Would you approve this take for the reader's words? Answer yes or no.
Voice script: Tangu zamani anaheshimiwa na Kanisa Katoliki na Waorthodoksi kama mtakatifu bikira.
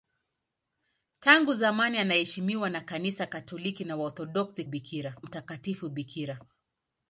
no